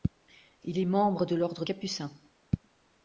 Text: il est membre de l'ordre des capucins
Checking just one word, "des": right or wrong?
wrong